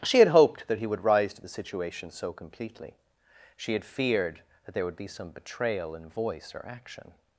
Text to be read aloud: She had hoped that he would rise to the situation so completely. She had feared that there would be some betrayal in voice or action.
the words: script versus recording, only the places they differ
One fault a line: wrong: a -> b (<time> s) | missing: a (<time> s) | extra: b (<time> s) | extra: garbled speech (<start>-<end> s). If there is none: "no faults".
no faults